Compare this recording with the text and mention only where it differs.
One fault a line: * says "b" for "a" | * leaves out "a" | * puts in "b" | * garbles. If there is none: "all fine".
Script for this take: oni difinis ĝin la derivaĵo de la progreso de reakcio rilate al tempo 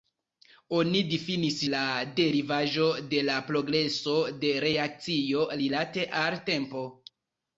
* leaves out "ĝin"